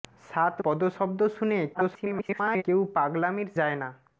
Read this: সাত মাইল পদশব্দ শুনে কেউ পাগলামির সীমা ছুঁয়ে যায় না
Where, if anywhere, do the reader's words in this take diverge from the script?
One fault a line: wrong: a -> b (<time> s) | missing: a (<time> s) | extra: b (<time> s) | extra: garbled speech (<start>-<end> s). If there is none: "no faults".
missing: মাইল (0.6 s)
extra: garbled speech (1.7-2.6 s)
missing: সীমা ছুঁয়ে (3.5 s)